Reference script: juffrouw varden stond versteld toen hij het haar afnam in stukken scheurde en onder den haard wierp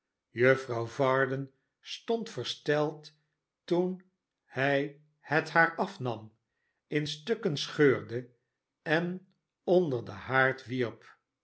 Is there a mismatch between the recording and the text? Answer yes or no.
no